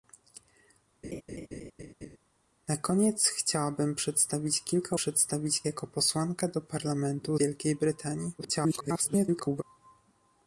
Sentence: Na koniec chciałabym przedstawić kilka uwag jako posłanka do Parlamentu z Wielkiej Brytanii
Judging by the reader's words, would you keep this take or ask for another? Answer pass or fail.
fail